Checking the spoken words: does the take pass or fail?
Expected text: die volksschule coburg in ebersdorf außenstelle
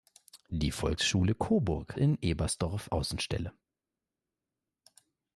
pass